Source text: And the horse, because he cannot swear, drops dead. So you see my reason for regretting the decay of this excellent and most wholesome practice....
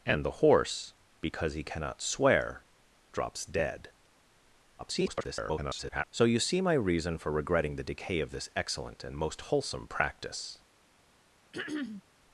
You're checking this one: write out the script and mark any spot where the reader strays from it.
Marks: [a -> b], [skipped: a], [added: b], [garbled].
And the horse, because he cannot swear, drops dead. [garbled] So you see my reason for regretting the decay of this excellent and most wholesome practice....